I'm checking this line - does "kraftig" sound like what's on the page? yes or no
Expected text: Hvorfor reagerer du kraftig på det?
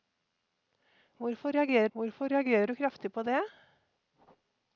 yes